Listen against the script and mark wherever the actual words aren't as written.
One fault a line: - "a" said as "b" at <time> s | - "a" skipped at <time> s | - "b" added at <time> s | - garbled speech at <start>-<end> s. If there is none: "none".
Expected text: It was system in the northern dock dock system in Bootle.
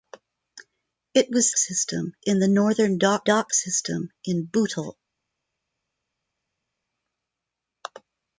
none